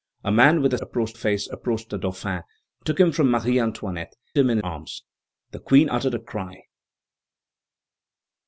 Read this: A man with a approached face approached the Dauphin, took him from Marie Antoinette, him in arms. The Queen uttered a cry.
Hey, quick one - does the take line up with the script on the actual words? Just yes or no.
yes